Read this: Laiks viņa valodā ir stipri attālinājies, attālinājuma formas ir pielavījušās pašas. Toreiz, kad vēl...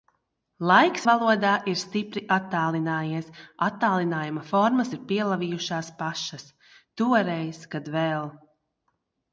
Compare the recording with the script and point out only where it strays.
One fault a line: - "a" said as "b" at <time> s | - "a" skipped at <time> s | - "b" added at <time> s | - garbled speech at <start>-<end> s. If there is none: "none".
- "viņa" skipped at 1.0 s